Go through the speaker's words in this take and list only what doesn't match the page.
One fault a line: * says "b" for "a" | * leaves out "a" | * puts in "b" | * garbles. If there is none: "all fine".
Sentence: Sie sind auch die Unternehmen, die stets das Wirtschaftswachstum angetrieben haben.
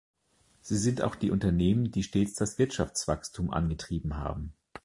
all fine